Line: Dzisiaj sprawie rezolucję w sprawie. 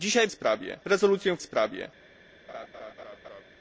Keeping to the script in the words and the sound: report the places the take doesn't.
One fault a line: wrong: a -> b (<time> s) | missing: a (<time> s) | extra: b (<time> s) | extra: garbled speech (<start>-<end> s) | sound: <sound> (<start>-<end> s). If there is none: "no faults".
sound: laugh (2.5-3.4 s)